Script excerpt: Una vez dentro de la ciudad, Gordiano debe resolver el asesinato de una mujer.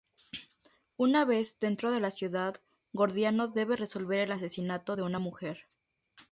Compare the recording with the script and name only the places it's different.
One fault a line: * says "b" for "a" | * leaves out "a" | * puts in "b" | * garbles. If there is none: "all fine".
all fine